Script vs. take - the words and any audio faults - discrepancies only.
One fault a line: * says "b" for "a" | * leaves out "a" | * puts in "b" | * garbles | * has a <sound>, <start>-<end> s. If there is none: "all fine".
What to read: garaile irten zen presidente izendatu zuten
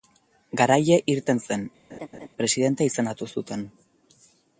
* has a laugh, 1.9-2.3 s